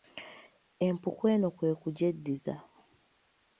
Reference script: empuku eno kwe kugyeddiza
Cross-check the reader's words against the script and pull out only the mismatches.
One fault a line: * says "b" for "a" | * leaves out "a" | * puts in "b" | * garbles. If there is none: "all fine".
all fine